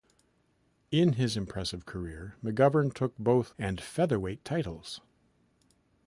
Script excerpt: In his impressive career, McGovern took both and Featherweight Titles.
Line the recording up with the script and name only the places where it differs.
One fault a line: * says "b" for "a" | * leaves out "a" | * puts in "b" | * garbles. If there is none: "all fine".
all fine